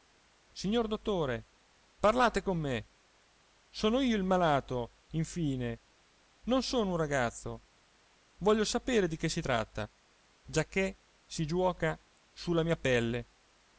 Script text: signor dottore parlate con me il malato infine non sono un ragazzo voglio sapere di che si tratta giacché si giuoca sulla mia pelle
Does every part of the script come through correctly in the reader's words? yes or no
no